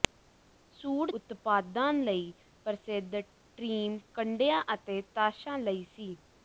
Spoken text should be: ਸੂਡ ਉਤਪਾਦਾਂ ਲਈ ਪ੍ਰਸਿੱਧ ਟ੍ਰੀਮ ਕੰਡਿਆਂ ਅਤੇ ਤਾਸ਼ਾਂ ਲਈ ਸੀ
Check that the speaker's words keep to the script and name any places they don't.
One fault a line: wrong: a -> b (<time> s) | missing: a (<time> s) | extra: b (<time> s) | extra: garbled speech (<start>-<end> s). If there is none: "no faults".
no faults